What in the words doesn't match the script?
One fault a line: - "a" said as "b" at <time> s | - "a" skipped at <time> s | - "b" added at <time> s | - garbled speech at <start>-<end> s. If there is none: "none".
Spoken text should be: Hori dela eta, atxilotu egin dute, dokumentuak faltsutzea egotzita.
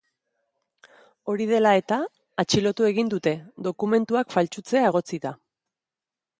none